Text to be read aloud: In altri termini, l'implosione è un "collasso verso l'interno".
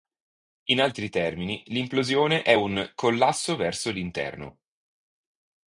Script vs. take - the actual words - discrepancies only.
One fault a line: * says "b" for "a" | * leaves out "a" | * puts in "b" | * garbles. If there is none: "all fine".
all fine